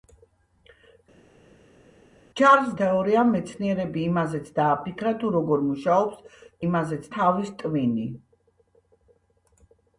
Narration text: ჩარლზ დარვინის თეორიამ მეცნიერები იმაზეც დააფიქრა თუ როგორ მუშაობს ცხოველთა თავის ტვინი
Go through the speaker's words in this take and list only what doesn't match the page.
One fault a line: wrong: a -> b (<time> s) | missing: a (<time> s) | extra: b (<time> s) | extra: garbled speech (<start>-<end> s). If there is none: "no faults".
missing: დარვინის (2.7 s)
wrong: ცხოველთა -> იმაზეც (6.6 s)